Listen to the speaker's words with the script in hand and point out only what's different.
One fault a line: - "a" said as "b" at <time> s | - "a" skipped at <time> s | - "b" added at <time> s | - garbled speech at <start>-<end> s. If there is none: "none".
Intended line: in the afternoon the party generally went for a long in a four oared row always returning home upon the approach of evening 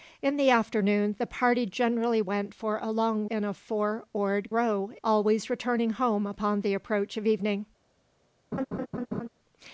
none